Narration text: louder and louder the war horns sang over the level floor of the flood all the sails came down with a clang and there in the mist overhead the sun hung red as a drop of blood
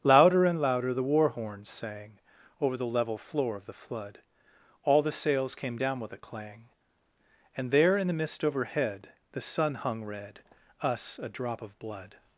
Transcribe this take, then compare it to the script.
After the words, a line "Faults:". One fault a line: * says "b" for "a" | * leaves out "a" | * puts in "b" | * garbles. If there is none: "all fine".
louder and louder the war horns sang over the level floor of the flood all the sails came down with a clang and there in the mist overhead the sun hung red us a drop of blood
Faults:
* says "us" for "as"